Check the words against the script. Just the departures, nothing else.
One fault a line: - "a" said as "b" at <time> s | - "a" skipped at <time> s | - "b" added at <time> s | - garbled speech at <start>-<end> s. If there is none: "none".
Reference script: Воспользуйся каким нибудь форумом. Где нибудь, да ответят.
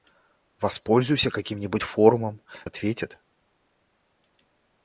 - "Где нибудь да" skipped at 2.4 s